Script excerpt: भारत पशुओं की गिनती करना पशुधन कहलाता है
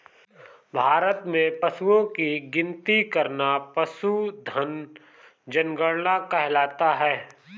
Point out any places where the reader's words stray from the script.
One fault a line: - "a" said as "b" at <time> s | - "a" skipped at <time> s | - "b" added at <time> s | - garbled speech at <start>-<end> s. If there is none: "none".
- "में" added at 1.3 s
- "जनगणना" added at 5.5 s